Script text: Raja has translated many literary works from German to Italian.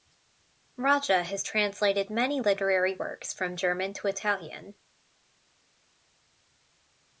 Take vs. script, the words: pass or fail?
pass